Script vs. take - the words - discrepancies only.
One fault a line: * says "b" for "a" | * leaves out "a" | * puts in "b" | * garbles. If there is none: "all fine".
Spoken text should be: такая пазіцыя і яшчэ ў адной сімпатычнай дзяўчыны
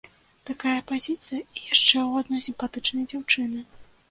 all fine